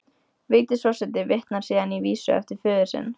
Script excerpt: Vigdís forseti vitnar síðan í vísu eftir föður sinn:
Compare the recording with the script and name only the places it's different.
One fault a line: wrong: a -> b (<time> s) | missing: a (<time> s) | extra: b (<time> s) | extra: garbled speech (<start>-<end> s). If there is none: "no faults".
no faults